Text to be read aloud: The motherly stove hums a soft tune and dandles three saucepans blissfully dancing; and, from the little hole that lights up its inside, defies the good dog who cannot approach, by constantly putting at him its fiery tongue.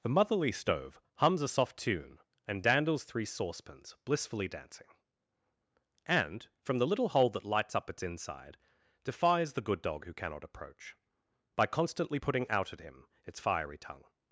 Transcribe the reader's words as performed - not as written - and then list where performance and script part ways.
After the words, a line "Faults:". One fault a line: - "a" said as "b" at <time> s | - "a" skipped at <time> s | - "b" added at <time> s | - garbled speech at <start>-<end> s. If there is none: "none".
The motherly stove hums a soft tune and dandles three saucepans blissfully dancing; and, from the little hole that lights up its inside, defies the good dog who cannot approach, by constantly putting out at him its fiery tongue.
Faults:
- "out" added at 12.5 s